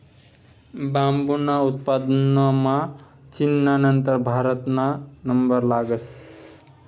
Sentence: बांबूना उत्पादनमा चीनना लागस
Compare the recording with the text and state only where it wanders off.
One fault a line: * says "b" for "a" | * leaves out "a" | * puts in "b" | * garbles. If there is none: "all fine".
* puts in "नंतर भारतना नंबर"